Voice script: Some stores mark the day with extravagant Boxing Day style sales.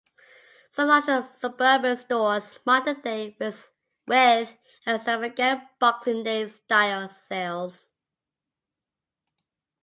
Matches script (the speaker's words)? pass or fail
fail